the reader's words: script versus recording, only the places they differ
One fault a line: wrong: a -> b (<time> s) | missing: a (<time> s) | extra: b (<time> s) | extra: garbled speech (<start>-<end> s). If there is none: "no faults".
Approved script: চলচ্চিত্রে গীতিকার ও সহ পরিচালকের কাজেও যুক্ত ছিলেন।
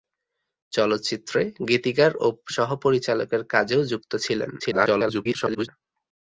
extra: garbled speech (4.6-5.7 s)